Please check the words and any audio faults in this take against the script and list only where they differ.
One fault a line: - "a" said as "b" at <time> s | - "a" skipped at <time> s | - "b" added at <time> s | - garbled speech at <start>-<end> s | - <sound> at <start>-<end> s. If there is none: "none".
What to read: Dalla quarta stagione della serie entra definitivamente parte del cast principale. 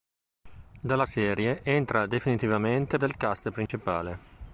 - "quarta stagione della" skipped at 1.1 s
- "parte" skipped at 3.0 s
- dropout at 3.7-3.7 s